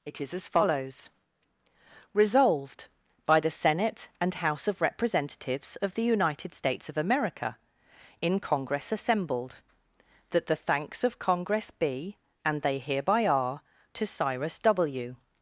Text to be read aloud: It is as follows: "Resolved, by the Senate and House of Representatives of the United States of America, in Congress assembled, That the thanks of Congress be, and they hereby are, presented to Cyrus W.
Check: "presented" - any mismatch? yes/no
yes